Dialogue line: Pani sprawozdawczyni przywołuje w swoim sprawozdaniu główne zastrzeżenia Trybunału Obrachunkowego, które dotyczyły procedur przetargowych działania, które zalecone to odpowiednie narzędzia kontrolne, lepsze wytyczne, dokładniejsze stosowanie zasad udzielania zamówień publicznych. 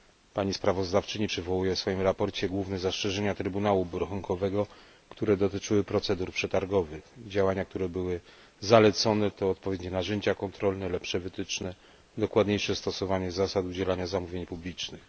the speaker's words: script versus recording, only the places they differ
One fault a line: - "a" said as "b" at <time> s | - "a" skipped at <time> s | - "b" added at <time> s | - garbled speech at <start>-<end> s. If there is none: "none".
- "były" added at 7.9 s